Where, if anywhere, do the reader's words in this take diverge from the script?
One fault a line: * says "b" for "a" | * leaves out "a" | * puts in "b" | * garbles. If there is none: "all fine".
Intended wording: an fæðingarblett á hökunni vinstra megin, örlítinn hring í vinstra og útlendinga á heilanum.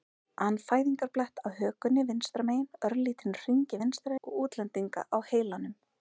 all fine